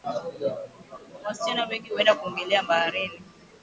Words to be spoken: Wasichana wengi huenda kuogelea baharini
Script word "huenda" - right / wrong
right